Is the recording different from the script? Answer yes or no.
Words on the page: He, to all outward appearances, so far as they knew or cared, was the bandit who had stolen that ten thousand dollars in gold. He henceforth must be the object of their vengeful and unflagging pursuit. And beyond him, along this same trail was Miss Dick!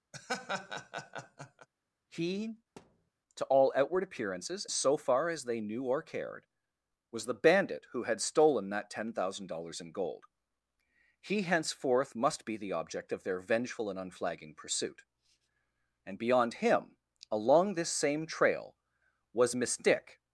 no